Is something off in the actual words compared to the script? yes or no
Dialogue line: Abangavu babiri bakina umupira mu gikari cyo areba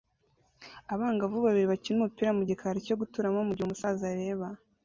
yes